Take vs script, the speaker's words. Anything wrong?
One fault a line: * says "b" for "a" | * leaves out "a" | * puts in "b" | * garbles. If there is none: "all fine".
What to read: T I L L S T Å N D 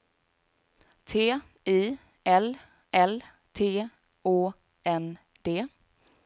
* leaves out "S"